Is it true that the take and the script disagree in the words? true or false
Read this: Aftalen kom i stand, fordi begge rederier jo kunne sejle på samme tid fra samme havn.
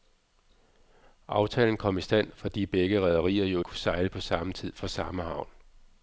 false